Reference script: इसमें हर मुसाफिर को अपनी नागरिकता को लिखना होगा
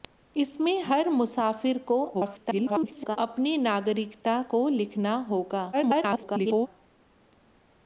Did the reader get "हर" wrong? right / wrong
right